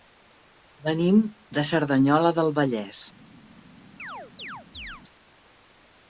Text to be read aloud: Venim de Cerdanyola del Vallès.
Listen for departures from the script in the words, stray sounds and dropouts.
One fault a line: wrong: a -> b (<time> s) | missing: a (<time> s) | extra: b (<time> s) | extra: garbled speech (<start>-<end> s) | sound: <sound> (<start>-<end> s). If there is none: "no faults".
sound: chirp (4.0-5.0 s)